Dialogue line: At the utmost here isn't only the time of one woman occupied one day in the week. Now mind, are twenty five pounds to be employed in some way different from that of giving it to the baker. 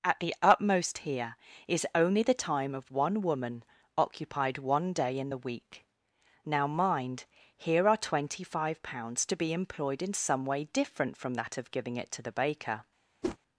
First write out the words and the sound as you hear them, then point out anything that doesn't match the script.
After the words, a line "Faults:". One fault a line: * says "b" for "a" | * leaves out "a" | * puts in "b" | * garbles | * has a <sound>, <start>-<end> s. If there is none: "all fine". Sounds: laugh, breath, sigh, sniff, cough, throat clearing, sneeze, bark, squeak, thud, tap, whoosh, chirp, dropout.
At the utmost here is only the time of one woman occupied one day in the week. Now mind, here are twenty five pounds to be employed in some way different from that of giving it to the baker.
Faults:
* says "is" for "isn't"
* puts in "here"
* has a whoosh, 13.2-13.4 s